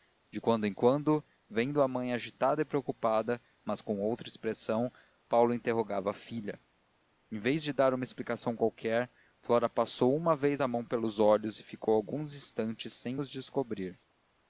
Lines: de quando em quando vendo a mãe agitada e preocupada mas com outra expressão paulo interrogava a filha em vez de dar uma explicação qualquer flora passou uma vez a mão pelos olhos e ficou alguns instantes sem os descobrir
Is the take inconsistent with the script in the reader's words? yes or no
no